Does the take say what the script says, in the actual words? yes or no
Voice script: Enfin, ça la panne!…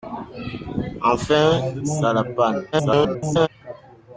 no